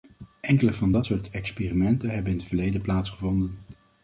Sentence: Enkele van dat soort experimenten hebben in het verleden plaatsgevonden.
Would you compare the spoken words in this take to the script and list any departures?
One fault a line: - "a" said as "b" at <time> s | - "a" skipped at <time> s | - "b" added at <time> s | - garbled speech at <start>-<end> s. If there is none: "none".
none